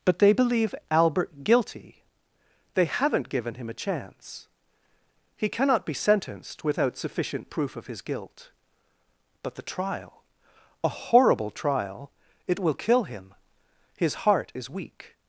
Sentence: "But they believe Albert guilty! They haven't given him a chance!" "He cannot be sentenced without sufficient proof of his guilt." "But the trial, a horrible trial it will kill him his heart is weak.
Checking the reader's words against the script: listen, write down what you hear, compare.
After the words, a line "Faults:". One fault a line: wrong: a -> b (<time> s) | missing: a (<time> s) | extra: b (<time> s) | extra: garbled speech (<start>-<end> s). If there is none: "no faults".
"But they believe Albert guilty! They haven't given him a chance!" "He cannot be sentenced without sufficient proof of his guilt." "But the trial, a horrible trial it will kill him his heart is weak.
Faults:
no faults